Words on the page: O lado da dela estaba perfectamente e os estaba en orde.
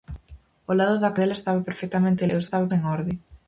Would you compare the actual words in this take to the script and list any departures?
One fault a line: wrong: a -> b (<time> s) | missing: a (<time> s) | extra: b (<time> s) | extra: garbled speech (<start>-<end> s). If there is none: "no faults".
no faults